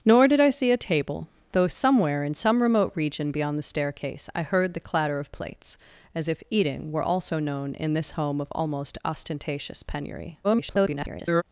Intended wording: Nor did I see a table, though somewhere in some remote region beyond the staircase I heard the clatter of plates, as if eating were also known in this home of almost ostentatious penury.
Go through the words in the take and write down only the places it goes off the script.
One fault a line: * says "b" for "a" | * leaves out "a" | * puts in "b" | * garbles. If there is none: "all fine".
* garbles